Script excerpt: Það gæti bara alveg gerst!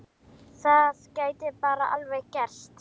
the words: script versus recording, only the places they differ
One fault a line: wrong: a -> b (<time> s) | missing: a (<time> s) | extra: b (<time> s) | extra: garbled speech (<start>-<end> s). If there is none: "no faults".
no faults